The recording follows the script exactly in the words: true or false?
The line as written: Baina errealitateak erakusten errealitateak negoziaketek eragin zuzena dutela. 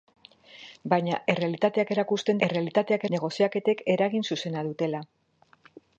true